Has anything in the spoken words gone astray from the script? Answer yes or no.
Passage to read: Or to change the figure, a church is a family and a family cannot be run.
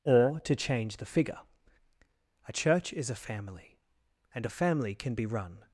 yes